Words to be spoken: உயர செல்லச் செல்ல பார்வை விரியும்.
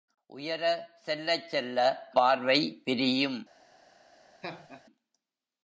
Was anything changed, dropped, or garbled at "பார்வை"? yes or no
no